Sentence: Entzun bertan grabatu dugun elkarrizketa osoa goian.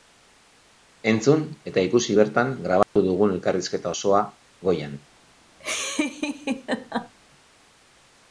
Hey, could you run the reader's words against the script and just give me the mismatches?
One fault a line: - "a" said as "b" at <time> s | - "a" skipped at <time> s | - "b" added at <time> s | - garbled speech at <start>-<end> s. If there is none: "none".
- "eta ikusi" added at 1.7 s